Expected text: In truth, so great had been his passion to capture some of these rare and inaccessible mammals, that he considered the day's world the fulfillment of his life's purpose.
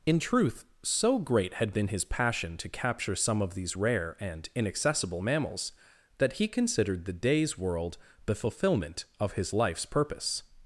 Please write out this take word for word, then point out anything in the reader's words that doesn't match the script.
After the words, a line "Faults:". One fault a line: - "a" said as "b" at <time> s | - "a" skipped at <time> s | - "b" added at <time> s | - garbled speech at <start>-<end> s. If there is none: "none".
In truth, so great had been his passion to capture some of these rare and inaccessible mammals, that he considered the day's world the fulfillment of his life's purpose.
Faults:
none